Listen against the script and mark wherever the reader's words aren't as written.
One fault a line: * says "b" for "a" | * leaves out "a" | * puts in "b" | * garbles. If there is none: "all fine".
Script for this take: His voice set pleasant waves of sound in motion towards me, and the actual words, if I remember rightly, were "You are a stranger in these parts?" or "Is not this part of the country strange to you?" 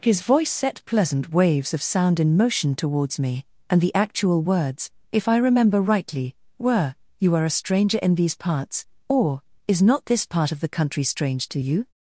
all fine